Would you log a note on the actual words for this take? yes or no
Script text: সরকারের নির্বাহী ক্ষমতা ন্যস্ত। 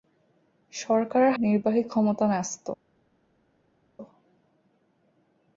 no